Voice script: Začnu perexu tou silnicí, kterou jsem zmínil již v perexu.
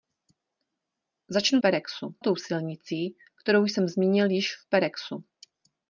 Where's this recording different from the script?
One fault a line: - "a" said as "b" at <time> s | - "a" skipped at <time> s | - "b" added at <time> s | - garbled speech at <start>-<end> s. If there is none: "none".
none